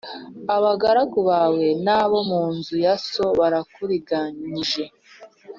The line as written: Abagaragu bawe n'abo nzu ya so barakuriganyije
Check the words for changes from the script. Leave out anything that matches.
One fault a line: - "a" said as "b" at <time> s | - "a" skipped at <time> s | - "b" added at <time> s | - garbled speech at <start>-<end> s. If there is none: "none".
- "mu" added at 2.3 s